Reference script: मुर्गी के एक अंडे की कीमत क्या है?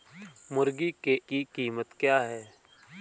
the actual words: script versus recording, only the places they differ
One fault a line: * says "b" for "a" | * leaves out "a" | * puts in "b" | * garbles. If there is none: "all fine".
* leaves out "एक अंडे"